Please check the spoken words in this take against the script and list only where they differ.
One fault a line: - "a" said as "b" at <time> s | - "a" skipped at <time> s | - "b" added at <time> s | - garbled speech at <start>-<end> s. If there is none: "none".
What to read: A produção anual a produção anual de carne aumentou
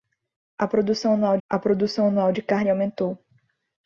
none